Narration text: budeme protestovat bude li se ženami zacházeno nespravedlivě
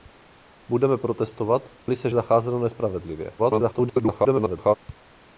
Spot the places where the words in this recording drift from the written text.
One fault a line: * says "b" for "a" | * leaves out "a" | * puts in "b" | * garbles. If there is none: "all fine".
* leaves out "bude"
* leaves out "ženami"
* garbles